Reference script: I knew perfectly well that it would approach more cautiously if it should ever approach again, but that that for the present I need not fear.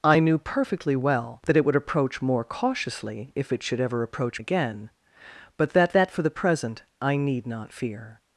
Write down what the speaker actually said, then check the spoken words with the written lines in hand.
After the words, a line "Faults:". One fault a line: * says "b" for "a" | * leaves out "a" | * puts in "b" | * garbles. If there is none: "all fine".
I knew perfectly well that it would approach more cautiously if it should ever approach again, but that that for the present I need not fear.
Faults:
all fine